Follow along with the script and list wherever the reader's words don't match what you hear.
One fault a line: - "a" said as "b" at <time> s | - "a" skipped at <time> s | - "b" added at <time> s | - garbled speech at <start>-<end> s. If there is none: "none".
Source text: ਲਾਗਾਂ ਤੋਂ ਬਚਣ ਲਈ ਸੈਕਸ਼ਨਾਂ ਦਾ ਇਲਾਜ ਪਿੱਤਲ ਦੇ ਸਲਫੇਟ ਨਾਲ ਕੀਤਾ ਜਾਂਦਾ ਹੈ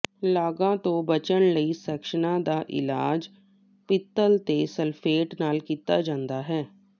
none